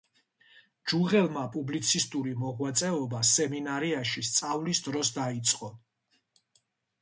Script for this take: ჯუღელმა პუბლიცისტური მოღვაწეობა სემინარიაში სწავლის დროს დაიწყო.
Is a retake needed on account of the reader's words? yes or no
no